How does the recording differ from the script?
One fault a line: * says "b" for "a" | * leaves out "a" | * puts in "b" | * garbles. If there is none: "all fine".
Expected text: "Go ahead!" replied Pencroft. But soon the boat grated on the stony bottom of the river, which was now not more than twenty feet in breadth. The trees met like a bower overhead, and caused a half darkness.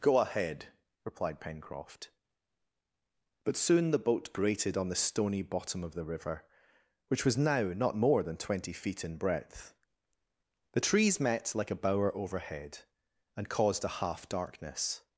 all fine